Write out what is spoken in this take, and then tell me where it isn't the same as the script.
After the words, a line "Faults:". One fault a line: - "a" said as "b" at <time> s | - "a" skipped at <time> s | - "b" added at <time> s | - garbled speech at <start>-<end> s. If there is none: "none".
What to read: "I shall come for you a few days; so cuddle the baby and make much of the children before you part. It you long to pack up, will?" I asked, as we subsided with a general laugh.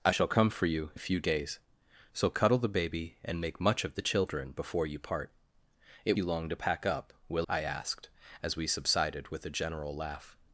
"I shall come for you a few days; so cuddle the baby and make much of the children before you part. It you long to pack up, will?" I asked, as we subsided with a general laugh.
Faults:
none